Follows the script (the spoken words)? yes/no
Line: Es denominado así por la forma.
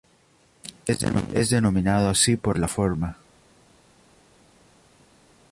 yes